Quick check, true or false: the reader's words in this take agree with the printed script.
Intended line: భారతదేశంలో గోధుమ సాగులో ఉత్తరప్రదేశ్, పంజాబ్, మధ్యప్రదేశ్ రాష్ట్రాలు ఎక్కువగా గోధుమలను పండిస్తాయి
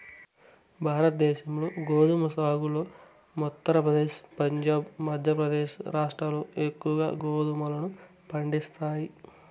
true